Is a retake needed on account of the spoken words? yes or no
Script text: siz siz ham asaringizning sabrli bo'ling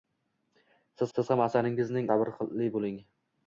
no